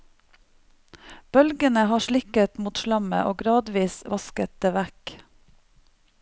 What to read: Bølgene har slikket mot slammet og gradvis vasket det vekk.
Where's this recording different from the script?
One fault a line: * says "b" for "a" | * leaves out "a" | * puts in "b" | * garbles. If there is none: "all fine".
all fine